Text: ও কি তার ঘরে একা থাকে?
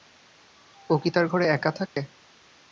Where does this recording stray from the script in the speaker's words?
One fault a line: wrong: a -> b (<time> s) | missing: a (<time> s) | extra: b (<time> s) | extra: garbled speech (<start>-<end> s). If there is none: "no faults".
no faults